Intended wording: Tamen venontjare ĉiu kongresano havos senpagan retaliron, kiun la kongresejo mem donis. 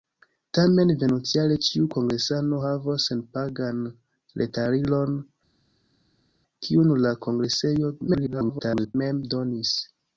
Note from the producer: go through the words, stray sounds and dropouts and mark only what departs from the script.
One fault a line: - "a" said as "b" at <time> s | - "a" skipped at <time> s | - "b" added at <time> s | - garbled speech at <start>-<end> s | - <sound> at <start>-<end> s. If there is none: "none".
- garbled speech at 8.1-8.9 s